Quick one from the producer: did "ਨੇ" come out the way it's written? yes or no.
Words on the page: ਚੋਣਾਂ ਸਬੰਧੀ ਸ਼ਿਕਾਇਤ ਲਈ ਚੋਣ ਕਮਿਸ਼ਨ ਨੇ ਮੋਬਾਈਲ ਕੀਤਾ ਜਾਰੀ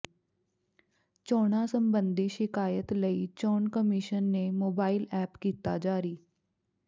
yes